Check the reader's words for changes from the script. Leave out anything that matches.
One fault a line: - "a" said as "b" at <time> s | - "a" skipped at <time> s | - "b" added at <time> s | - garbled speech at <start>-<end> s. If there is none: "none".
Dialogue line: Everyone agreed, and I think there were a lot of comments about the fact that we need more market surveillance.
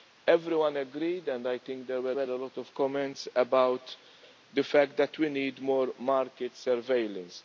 - "were" added at 2.1 s